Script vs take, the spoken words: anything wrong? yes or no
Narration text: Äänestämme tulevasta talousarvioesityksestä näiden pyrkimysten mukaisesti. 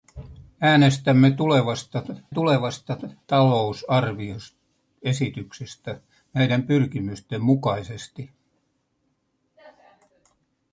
yes